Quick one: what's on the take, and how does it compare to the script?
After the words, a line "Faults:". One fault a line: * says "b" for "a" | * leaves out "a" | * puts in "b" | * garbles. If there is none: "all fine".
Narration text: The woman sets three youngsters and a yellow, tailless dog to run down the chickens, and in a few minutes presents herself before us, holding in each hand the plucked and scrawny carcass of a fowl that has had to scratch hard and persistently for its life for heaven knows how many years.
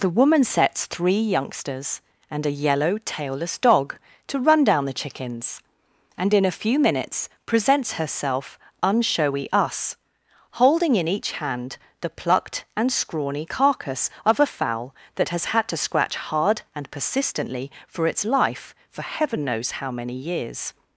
The woman sets three youngsters and a yellow, tailless dog to run down the chickens, and in a few minutes presents herself unshowy us, holding in each hand the plucked and scrawny carcass of a fowl that has had to scratch hard and persistently for its life for heaven knows how many years.
Faults:
* says "unshowy" for "before"